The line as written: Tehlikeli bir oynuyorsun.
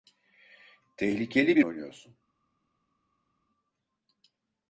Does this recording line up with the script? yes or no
yes